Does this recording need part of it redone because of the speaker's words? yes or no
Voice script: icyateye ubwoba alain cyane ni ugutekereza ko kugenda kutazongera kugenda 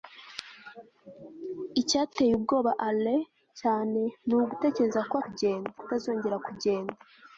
no